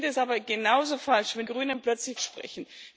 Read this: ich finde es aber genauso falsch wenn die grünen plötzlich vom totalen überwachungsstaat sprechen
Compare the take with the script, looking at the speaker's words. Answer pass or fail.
fail